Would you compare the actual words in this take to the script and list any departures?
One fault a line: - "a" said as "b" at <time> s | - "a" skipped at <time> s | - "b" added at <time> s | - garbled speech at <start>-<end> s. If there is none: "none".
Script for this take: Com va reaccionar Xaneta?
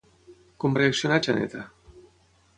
none